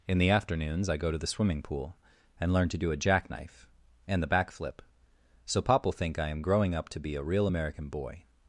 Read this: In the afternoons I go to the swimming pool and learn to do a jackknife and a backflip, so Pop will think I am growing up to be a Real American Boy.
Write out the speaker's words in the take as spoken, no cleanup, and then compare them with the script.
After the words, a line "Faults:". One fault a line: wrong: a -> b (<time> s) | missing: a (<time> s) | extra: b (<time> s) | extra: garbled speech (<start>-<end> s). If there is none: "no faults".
In the afternoons I go to the swimming pool and learn to do a jackknife and the backflip, so Pop will think I am growing up to be a Real American Boy.
Faults:
wrong: a -> the (4.2 s)